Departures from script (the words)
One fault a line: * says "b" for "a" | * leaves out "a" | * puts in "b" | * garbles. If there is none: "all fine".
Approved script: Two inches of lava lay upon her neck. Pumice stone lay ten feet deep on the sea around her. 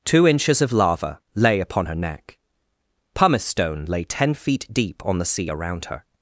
all fine